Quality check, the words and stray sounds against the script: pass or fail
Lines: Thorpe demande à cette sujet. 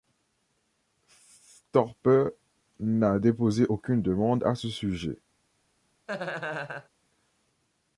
fail